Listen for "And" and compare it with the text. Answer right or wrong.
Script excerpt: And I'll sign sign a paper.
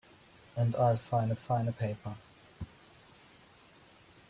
right